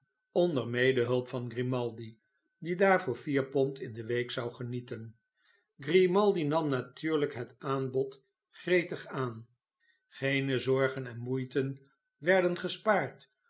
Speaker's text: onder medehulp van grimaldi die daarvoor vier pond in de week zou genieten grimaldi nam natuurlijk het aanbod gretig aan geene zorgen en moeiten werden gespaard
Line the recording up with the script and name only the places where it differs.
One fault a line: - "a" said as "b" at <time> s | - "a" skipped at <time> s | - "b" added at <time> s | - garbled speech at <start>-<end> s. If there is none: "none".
none